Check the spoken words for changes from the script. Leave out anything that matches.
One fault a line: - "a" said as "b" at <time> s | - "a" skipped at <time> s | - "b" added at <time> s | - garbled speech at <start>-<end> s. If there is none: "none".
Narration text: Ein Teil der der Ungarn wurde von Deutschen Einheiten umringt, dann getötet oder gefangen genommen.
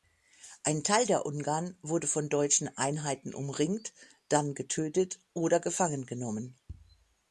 - "der" skipped at 1.3 s